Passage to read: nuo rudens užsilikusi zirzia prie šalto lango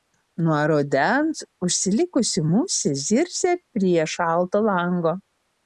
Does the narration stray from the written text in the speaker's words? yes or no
yes